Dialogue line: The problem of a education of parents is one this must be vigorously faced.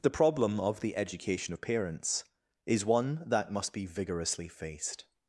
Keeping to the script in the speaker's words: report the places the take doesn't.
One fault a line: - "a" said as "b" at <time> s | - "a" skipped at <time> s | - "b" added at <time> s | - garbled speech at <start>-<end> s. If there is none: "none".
- "a" said as "the" at 0.8 s
- "this" said as "that" at 3.3 s